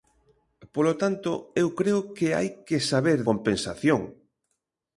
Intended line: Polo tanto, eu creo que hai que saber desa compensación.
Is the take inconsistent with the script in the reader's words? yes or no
yes